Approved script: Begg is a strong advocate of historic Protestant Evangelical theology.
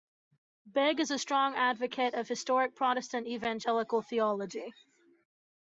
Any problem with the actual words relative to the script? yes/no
no